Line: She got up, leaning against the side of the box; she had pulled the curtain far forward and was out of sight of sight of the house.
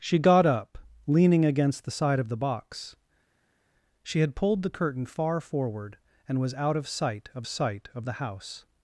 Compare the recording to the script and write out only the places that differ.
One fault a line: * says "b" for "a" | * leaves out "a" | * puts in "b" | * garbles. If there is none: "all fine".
all fine